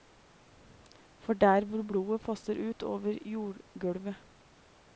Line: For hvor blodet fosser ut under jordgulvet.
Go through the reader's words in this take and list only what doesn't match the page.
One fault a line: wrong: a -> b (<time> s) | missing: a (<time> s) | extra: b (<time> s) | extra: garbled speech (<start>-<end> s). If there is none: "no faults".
extra: der (1.3 s)
wrong: under -> over (2.8 s)